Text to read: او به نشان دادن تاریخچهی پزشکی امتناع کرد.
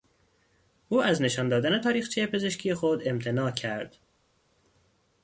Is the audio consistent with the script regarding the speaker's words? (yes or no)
no